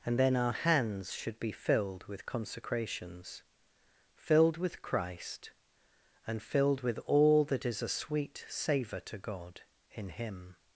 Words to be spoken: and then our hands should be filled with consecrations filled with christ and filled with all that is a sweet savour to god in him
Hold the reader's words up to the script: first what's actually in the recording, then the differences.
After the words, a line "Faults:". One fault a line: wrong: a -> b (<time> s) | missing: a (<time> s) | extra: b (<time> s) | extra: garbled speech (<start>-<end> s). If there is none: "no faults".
and then our hands should be filled with consecrations filled with christ and filled with all that is a sweet savour to god in him
Faults:
no faults